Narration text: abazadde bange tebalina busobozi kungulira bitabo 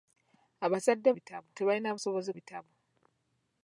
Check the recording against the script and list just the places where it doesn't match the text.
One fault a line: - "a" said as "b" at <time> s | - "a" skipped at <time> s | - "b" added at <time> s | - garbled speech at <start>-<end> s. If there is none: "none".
- "bange" said as "bitabo" at 1.2 s
- "kungulira" skipped at 2.3 s